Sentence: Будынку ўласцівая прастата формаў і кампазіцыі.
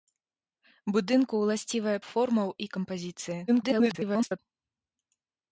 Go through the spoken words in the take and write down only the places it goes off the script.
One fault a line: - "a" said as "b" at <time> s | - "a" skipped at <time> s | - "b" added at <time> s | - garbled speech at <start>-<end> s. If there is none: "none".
- "прастата" skipped at 1.9 s
- garbled speech at 3.5-4.4 s